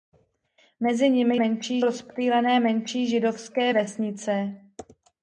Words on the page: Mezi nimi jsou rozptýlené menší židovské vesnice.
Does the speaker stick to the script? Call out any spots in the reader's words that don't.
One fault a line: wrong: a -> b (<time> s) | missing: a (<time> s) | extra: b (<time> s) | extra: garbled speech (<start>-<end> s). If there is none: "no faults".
wrong: jsou -> menší (1.4 s)